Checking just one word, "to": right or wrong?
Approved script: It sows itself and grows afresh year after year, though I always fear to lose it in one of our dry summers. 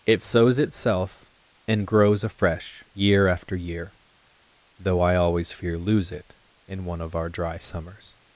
wrong